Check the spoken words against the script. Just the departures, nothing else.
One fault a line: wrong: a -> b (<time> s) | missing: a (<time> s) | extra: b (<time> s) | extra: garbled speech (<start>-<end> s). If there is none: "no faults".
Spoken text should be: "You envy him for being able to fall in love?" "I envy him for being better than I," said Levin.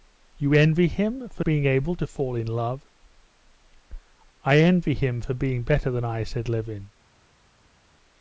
no faults